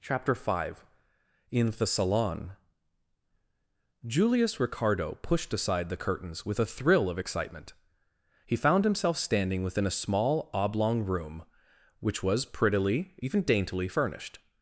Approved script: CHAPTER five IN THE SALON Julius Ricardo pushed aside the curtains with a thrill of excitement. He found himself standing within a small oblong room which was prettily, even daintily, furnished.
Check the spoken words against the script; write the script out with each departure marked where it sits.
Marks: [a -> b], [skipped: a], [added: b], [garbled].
CHAPTER five IN THE SALON Julius Ricardo pushed aside the curtains with a thrill of excitement. He found himself standing within a small oblong room which was prettily, even daintily, furnished.